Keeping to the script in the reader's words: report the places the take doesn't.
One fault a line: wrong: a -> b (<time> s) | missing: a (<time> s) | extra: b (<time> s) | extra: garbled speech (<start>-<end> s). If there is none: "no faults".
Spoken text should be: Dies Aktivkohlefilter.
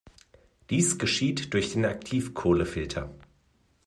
extra: geschieht durch den (1.0 s)